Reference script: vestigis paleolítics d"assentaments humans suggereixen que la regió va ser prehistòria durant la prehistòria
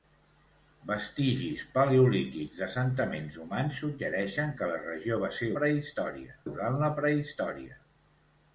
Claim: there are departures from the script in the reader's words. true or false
false